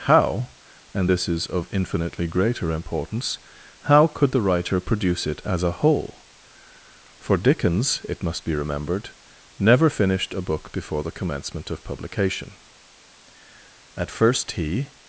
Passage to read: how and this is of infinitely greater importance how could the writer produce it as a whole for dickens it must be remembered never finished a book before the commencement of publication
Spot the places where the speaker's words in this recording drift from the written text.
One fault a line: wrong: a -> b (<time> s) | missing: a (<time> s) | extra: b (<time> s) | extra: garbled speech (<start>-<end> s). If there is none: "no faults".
extra: at first he (14.0 s)